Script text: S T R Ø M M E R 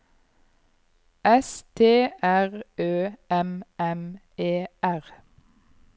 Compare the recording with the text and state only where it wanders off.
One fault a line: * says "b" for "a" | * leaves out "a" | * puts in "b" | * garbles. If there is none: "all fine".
all fine